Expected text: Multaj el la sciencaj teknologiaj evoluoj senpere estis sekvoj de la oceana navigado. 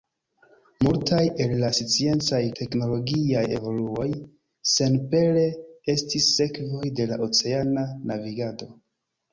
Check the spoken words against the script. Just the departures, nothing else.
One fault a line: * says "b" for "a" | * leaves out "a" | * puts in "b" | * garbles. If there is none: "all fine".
all fine